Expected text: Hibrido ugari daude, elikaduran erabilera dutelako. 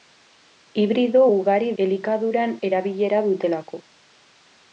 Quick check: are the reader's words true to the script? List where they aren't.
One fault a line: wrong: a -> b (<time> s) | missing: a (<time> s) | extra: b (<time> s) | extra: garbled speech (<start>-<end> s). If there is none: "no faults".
missing: daude (1.7 s)